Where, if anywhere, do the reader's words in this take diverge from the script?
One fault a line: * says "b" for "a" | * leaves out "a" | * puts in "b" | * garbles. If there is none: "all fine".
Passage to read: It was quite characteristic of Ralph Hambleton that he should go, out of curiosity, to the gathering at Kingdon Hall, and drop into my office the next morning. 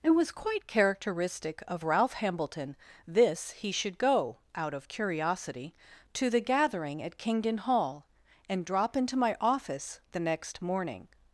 * says "this" for "that"